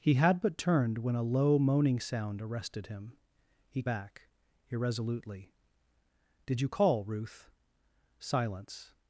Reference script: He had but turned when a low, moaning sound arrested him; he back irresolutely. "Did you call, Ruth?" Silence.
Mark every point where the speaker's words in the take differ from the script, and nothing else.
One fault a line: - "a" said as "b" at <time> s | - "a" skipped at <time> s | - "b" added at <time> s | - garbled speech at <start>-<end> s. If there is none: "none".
none